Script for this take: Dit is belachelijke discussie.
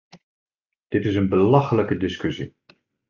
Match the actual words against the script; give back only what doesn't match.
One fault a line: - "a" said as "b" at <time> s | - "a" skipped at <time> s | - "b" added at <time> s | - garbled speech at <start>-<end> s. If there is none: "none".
- "een" added at 1.1 s